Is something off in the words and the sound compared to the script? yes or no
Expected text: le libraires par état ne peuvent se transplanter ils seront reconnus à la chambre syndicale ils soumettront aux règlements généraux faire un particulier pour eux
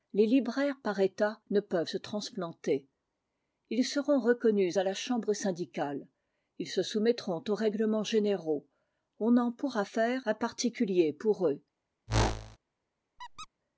yes